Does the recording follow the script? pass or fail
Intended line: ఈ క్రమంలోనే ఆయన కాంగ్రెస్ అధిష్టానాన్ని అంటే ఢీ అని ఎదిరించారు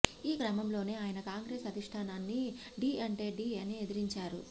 fail